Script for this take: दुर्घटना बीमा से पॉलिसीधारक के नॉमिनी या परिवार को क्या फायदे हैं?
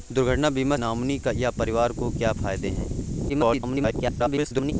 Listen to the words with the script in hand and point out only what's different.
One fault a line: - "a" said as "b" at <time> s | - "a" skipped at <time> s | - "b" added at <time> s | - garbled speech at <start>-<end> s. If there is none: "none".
- "से पॉलिसीधारक के" skipped at 0.8 s
- garbled speech at 3.3-4.7 s